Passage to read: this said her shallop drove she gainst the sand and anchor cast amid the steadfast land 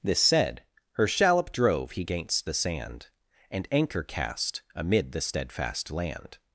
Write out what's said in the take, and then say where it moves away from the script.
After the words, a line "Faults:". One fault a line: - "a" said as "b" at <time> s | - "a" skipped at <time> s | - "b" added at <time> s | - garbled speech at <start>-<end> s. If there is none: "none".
this said her shallop drove he gainst the sand and anchor cast amid the steadfast land
Faults:
- "she" said as "he" at 1.9 s